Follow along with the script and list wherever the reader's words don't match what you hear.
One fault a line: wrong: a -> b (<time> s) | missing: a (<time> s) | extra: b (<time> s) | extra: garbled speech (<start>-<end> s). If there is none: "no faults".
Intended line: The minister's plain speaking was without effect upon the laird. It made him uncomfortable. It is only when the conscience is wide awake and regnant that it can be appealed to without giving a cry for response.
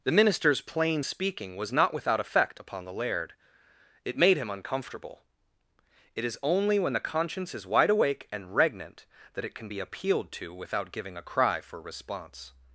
extra: not (1.7 s)